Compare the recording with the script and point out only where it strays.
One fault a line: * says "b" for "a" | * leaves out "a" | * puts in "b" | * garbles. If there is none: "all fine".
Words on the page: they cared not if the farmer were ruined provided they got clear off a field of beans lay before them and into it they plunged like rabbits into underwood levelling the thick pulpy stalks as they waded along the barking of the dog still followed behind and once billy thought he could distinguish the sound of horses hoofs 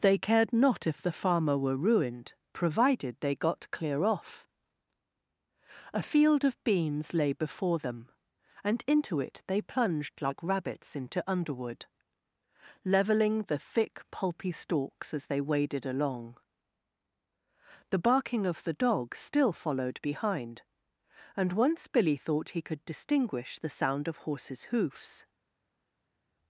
all fine